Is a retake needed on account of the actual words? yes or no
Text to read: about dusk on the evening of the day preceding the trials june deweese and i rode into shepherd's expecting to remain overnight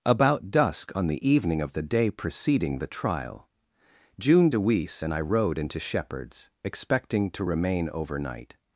yes